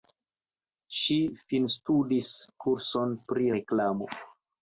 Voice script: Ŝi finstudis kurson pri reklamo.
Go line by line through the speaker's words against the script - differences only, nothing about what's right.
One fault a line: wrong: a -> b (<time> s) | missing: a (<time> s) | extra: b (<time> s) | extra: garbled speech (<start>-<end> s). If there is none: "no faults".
no faults